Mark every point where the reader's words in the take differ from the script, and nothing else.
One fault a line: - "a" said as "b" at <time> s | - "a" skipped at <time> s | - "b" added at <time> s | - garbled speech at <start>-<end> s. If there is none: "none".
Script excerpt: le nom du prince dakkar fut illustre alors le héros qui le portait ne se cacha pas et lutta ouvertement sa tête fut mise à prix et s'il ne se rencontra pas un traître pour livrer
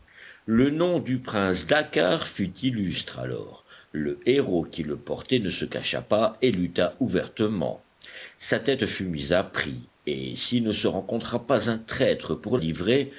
none